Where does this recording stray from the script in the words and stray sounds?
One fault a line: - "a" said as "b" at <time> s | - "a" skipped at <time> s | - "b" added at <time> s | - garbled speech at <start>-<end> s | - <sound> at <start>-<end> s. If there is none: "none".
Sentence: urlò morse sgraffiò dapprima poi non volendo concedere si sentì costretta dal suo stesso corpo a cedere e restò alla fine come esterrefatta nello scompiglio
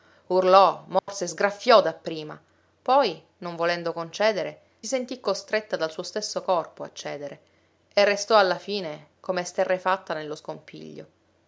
- dropout at 1.0-1.1 s
- "si" skipped at 4.6 s